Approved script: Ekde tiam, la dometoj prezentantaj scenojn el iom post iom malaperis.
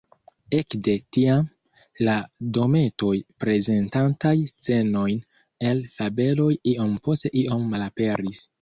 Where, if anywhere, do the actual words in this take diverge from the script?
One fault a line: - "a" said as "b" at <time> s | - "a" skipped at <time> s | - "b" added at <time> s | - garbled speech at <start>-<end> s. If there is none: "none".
- "fabeloj" added at 6.0 s